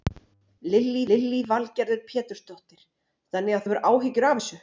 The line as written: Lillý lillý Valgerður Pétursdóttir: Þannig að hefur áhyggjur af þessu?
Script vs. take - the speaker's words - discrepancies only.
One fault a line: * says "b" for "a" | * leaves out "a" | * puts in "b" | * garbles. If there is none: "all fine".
all fine